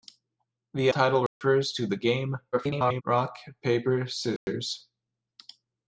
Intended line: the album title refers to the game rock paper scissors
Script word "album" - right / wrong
wrong